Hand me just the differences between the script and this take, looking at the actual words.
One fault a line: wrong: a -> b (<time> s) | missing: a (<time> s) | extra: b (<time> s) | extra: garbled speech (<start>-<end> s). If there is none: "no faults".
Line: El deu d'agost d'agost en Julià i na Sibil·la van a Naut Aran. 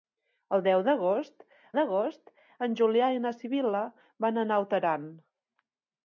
no faults